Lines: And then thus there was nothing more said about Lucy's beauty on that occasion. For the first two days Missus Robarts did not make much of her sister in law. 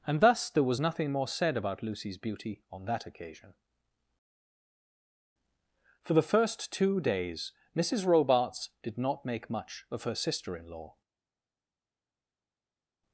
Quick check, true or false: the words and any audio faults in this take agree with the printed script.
false